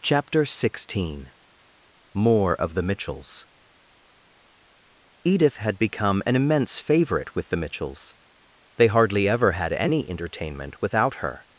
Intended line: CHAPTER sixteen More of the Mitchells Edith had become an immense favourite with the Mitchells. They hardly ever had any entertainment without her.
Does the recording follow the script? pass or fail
pass